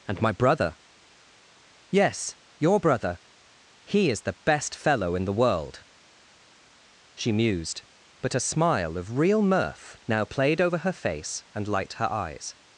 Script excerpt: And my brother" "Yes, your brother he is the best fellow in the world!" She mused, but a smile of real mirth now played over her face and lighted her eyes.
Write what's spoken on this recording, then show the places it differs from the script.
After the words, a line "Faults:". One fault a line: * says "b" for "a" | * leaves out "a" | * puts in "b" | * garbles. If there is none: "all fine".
And my brother" "Yes, your brother he is the best fellow in the world!" She mused, but a smile of real mirth now played over her face and light her eyes.
Faults:
* says "light" for "lighted"